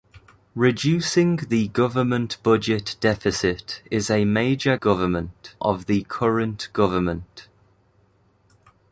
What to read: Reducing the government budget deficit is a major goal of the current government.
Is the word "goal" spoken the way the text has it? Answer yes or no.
no